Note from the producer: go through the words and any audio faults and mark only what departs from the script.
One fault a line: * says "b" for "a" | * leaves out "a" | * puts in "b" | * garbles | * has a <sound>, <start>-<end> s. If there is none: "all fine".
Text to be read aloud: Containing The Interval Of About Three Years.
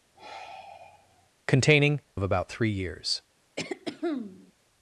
* has a sigh, 0.1-1.3 s
* leaves out "The Interval"
* has a throat clearing, 3.6-4.5 s